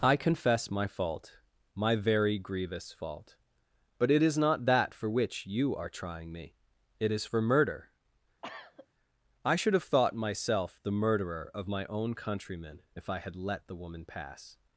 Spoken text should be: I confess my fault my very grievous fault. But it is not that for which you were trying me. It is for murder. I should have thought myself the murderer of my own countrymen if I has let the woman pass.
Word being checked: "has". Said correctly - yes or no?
no